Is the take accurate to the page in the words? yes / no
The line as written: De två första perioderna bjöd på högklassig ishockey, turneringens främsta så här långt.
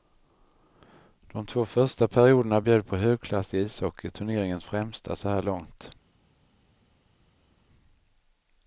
yes